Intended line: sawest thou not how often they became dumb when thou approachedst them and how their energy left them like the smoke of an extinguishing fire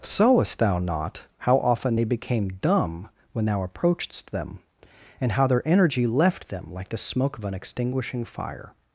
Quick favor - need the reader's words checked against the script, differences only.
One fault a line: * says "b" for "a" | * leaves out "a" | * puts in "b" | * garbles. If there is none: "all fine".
all fine